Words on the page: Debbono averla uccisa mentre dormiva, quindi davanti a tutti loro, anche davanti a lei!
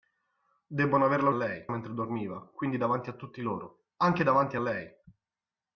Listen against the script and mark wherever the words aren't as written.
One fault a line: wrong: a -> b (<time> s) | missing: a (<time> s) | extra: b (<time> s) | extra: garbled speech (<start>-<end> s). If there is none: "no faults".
wrong: uccisa -> lei (1.3 s)